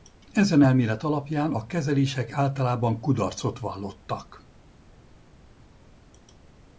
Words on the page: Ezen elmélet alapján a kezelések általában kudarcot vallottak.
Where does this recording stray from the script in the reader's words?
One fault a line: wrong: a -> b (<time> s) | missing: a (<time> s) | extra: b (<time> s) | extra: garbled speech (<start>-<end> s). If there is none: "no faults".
no faults